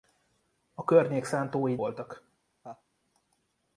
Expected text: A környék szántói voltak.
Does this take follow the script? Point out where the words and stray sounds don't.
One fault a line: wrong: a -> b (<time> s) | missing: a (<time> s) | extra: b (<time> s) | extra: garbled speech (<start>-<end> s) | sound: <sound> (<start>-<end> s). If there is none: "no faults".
sound: laugh (2.6-2.8 s)